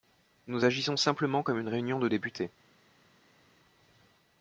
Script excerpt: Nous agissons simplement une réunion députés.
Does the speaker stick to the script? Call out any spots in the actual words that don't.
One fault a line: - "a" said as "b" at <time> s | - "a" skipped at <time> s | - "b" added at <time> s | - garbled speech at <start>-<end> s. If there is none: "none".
- "comme" added at 1.4 s
- "de" added at 2.0 s